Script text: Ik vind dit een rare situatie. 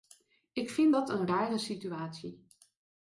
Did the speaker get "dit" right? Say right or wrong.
wrong